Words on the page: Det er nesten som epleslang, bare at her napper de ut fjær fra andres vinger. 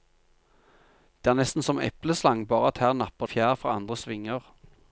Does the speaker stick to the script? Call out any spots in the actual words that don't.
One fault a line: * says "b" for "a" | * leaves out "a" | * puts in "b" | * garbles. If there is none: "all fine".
* leaves out "de ut"